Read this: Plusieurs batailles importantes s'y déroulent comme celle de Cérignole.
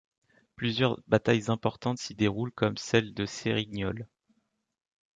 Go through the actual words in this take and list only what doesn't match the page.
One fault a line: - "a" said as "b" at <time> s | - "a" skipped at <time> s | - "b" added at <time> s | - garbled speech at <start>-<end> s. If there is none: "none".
none